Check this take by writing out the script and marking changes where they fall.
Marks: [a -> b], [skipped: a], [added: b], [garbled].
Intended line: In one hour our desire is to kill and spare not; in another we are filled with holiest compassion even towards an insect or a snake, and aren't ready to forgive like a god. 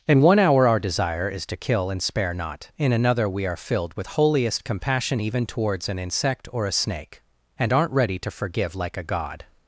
In one hour our desire is to kill and spare not; in another we are filled with holiest compassion even towards an insect or a snake, and aren't ready to forgive like a god.